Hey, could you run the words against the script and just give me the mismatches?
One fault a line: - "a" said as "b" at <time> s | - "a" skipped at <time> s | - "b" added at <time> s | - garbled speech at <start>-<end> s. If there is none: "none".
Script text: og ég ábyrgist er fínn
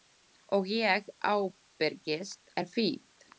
none